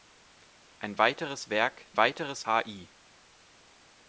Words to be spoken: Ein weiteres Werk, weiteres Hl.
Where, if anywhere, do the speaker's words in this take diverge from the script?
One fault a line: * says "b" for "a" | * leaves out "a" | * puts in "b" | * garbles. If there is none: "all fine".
all fine